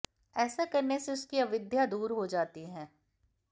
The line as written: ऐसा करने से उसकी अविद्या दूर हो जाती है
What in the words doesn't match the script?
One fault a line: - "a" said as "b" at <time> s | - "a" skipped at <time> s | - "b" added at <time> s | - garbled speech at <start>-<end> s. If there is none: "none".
none